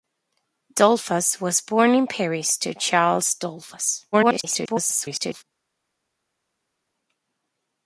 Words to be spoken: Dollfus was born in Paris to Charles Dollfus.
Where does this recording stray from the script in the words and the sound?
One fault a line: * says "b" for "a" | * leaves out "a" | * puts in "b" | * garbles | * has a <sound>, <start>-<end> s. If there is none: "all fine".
* garbles